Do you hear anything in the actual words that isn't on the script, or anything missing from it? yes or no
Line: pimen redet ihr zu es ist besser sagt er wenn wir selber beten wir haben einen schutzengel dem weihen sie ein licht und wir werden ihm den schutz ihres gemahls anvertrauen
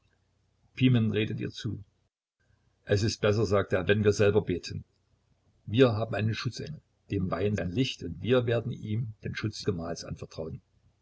yes